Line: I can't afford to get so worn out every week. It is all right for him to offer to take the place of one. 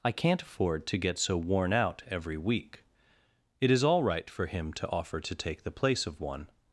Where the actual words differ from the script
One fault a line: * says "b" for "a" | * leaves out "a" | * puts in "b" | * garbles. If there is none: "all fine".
all fine